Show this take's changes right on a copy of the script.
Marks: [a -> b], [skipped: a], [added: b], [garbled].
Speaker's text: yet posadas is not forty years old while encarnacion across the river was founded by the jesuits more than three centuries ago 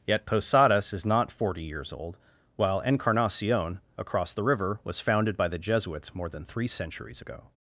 yet posadas is not forty years old while encarnacion across the river was founded by the jesuits more than three centuries ago